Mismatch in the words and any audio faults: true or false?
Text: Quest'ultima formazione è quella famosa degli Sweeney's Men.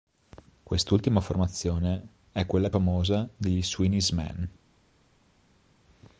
false